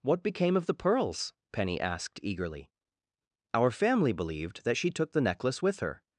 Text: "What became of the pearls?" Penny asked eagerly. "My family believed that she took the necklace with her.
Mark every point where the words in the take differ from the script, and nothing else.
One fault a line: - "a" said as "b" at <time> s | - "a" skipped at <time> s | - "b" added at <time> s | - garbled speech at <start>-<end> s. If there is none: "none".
- "My" said as "Our" at 3.5 s